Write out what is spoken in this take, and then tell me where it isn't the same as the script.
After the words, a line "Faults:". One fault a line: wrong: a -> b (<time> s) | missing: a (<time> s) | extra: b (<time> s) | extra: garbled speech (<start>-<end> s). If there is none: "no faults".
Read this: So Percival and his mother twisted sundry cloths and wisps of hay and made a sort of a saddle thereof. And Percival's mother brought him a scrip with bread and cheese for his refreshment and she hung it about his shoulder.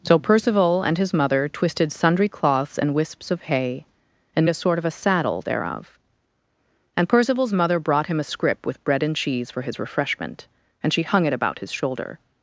So Percival and his mother twisted sundry cloths and wisps of hay and a sort of a saddle thereof. And Percival's mother brought him a scrip with bread and cheese for his refreshment and she hung it about his shoulder.
Faults:
missing: made (4.5 s)